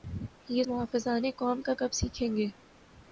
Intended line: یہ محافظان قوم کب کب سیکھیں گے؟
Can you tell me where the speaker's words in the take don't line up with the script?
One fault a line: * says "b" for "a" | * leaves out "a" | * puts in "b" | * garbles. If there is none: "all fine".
all fine